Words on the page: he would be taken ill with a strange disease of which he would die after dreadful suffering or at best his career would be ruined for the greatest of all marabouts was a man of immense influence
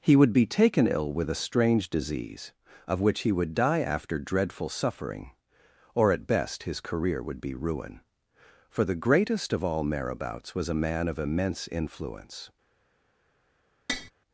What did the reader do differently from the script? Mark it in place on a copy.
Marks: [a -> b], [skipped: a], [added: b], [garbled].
he would be taken ill with a strange disease of which he would die after dreadful suffering or at best his career would be [ruined -> ruin] for the greatest of all marabouts was a man of immense influence